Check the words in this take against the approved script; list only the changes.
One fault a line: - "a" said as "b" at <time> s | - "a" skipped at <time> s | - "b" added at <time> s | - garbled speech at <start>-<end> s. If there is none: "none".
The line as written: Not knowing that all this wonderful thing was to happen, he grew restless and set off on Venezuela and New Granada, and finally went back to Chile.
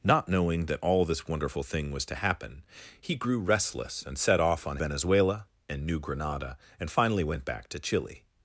none